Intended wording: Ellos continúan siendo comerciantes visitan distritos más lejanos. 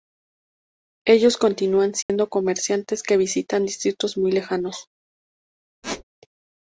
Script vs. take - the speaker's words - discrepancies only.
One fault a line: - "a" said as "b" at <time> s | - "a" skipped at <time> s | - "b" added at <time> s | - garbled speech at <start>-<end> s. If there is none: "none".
- "que" added at 3.0 s
- "más" said as "muy" at 4.2 s